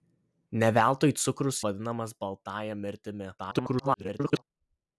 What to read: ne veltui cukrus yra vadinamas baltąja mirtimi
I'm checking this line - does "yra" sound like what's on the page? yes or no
no